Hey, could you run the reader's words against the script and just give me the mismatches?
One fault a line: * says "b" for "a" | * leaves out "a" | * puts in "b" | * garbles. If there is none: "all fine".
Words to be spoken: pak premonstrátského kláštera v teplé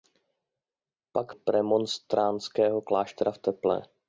all fine